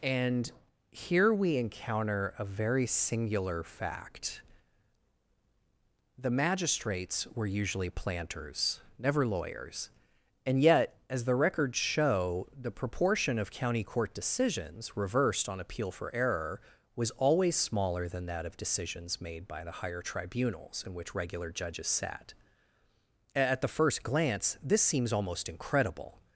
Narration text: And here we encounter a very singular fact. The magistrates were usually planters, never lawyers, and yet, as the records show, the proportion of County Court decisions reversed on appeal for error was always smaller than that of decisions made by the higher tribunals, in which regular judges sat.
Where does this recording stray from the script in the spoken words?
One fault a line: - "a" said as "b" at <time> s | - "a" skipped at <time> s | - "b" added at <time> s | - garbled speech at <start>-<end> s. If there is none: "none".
- "At the first glance this seems almost incredible" added at 23.4 s